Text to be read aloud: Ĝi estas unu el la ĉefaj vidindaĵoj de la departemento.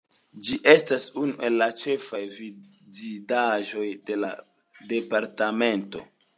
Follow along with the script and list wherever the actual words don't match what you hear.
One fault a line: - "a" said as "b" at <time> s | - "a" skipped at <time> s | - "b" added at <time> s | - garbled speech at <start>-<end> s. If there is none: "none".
none